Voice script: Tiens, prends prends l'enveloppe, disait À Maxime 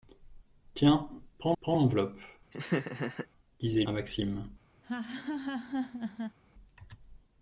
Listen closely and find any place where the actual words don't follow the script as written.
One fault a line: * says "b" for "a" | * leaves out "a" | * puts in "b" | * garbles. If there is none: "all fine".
all fine